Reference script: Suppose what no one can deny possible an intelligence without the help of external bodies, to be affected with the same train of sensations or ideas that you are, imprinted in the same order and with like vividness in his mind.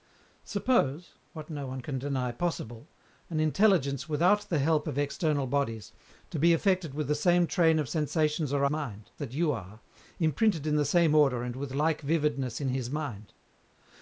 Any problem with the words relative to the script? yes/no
yes